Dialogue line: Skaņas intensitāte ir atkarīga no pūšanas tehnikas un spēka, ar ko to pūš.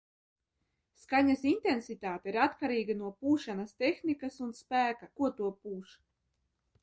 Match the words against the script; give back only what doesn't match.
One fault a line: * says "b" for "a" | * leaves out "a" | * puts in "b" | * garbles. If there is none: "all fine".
* leaves out "ar"